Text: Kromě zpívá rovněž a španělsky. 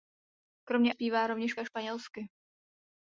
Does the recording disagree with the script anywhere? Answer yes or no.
no